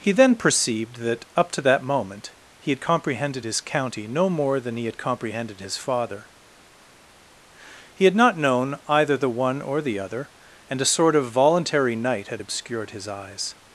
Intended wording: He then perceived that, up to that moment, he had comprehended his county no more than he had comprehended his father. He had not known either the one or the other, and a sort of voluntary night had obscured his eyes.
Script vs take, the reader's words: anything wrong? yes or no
no